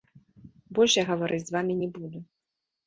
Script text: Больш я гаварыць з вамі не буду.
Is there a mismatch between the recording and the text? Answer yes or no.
no